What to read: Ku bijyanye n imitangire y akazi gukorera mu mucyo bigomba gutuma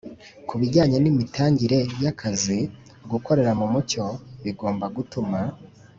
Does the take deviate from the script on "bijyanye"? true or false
false